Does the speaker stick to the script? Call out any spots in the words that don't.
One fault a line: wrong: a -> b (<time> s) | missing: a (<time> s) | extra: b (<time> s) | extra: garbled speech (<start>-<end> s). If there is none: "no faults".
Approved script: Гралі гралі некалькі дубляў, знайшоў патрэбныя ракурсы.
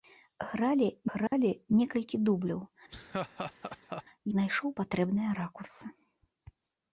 no faults